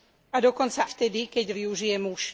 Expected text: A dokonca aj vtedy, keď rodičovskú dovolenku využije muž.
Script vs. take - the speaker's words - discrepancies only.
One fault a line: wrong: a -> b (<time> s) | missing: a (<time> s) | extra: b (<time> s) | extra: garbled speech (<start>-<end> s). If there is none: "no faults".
missing: aj (0.9 s)
missing: rodičovskú dovolenku (1.5 s)